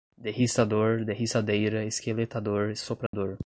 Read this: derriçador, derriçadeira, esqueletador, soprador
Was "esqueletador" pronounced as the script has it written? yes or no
yes